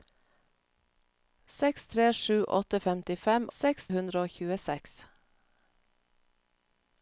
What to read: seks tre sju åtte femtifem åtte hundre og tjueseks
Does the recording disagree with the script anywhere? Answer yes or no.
yes